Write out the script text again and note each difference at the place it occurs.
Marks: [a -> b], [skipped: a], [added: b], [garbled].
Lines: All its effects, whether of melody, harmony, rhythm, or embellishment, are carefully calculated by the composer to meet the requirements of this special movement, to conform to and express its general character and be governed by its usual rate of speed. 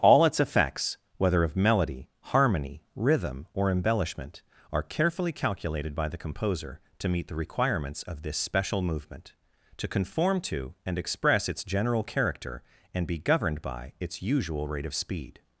All its effects, whether of melody, harmony, rhythm, or embellishment, are carefully calculated by the composer to meet the requirements of this special movement, to conform to and express its general character and be governed by its usual rate of speed.